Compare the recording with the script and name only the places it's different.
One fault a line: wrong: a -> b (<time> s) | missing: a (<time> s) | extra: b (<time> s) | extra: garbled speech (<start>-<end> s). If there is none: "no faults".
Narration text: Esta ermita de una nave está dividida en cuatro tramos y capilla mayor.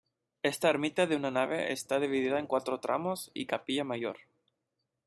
no faults